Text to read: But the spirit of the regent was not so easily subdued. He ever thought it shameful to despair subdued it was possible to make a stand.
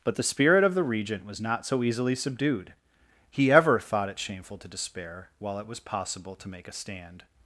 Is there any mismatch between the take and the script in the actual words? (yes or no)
yes